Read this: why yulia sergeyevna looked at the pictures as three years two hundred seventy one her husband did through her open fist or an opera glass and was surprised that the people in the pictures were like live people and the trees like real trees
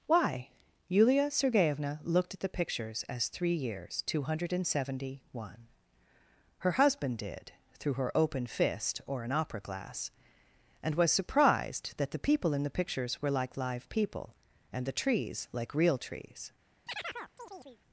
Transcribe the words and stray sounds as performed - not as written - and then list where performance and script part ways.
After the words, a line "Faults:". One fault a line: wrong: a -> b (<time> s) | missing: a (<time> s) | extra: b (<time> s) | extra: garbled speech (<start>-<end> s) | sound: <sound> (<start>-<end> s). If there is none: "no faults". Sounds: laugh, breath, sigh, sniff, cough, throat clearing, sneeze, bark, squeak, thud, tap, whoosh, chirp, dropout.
why yulia sergeyevna looked at the pictures as three years two hundred seventy one her husband did through her open fist or an opera glass and was surprised that the people in the pictures were like live people and the trees like real trees
Faults:
sound: chirp (16.9-17.8 s)